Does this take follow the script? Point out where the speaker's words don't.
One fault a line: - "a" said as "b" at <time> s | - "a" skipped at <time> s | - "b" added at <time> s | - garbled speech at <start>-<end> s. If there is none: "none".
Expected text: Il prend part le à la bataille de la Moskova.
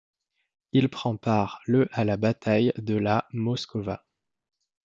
none